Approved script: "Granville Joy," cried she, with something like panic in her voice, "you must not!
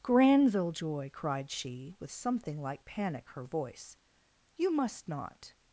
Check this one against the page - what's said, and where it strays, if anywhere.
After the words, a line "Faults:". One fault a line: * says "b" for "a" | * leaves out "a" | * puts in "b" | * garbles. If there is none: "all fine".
"Granville Joy," cried she, with something like panic her voice, "you must not!
Faults:
* leaves out "in"